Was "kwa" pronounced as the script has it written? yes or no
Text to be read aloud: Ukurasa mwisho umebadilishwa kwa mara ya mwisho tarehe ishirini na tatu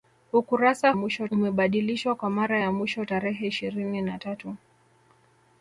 yes